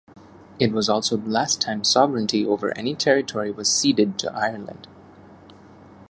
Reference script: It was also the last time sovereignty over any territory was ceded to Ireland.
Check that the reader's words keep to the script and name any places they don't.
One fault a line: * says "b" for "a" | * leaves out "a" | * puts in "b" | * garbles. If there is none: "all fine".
all fine